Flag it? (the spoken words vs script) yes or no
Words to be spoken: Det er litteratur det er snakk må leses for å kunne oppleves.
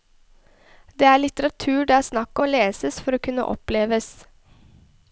no